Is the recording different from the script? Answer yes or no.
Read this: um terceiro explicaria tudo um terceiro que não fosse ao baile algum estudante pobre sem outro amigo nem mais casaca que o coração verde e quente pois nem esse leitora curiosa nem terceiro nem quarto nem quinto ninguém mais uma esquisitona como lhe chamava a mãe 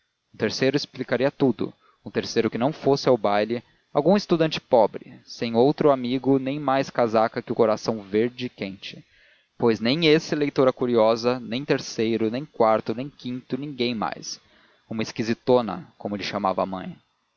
no